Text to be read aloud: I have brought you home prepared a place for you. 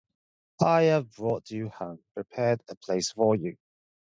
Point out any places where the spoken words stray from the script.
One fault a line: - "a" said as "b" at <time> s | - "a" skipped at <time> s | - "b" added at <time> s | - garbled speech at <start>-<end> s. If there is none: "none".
none